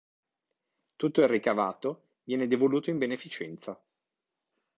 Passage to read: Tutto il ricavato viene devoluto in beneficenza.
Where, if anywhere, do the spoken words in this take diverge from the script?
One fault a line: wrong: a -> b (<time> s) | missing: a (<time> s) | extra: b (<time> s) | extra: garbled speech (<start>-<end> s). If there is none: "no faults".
no faults